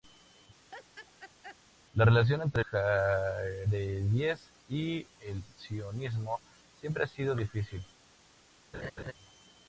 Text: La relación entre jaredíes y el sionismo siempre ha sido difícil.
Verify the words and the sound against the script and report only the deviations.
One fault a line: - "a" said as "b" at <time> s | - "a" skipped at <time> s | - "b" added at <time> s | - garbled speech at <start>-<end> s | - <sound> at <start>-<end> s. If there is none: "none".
- laugh at 0.7-1.6 s
- laugh at 8.7-9.1 s